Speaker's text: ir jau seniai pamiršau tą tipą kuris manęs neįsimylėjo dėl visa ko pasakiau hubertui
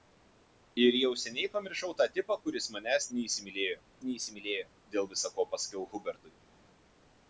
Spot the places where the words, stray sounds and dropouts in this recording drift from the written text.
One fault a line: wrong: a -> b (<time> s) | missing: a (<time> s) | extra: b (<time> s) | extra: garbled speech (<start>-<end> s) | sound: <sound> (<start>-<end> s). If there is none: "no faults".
extra: neįsimylėjo (4.1 s)